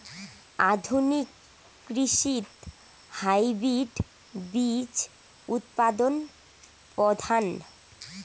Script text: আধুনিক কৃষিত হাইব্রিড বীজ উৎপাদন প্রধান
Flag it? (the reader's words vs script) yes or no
no